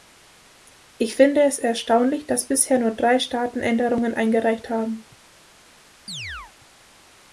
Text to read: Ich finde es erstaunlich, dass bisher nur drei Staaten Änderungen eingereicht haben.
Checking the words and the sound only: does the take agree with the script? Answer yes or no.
no